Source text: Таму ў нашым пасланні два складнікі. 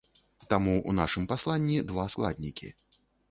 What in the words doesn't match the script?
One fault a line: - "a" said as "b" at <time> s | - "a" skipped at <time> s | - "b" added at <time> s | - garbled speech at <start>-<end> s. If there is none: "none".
none